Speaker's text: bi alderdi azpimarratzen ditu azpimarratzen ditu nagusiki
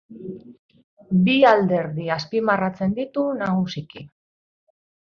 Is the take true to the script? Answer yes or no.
no